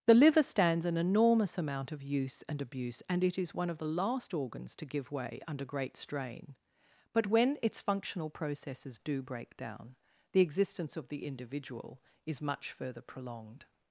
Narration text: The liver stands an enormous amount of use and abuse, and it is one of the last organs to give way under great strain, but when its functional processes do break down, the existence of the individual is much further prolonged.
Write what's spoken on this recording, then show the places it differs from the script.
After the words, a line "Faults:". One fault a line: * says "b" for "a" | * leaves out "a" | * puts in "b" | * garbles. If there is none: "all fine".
The liver stands an enormous amount of use and abuse, and it is one of the last organs to give way under great strain, but when its functional processes do break down, the existence of the individual is much further prolonged.
Faults:
all fine